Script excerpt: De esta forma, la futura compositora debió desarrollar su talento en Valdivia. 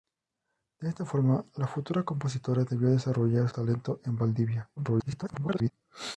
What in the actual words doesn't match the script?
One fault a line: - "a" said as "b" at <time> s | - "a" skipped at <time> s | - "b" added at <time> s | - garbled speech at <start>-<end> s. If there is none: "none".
- "su" skipped at 3.5 s
- garbled speech at 4.8-5.7 s